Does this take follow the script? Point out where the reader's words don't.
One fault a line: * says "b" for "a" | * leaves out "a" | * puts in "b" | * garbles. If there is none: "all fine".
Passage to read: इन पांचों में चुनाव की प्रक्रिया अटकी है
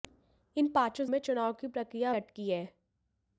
all fine